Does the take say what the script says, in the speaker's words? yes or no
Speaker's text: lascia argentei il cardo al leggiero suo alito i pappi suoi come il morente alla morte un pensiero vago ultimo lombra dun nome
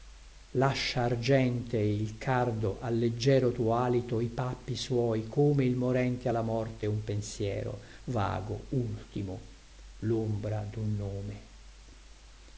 no